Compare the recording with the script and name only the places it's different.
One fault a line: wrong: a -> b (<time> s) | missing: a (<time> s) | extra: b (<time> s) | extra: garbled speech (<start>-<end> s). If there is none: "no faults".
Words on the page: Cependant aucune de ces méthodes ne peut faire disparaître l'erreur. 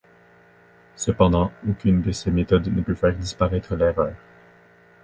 no faults